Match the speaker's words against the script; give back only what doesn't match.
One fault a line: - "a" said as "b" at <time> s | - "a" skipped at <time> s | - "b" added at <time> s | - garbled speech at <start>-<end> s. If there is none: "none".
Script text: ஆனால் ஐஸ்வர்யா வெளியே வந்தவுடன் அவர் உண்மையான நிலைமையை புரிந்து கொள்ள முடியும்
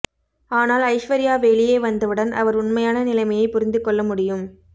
none